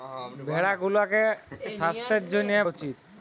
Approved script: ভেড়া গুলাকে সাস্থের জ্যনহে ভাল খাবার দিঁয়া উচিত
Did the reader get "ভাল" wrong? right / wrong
wrong